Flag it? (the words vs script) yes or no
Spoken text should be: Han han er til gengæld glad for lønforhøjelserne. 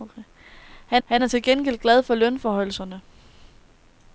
no